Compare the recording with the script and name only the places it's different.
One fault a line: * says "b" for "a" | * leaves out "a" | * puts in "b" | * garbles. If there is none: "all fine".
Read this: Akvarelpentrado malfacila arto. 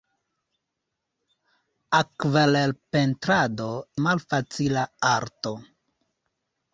all fine